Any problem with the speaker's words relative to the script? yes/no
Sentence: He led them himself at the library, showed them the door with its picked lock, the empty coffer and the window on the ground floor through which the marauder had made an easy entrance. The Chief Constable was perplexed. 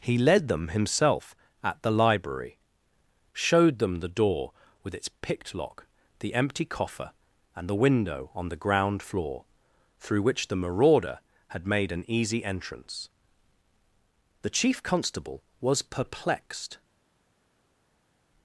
no